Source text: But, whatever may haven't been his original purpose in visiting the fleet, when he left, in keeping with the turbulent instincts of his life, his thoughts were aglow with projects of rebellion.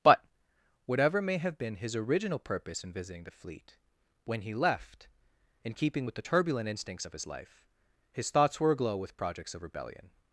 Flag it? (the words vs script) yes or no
yes